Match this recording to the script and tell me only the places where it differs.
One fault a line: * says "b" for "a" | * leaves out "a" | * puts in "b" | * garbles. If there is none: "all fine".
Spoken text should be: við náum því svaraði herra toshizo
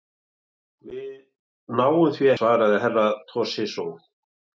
all fine